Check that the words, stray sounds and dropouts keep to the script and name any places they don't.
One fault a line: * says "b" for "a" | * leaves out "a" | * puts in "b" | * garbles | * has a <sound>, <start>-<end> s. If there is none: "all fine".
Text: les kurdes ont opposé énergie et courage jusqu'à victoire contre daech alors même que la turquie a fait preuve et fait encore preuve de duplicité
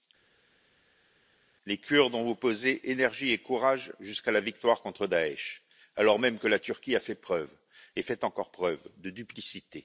* puts in "la"